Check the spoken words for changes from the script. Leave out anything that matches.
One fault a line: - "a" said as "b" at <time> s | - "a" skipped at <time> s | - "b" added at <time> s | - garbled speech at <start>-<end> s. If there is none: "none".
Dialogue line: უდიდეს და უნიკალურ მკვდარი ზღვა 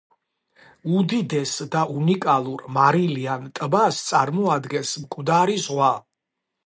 - "მარილიან ტბას წარმოადგენს" added at 2.7 s